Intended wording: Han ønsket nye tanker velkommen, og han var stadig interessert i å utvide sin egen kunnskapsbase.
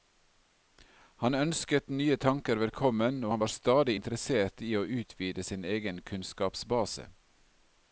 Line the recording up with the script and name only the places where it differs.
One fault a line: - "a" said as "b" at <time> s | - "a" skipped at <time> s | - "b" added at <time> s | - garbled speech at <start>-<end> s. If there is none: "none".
none